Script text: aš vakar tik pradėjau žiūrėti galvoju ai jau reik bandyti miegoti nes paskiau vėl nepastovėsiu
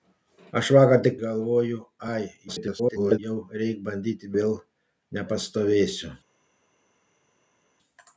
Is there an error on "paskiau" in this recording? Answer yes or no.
yes